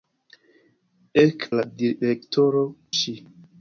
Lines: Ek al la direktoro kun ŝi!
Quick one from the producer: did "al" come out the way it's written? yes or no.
no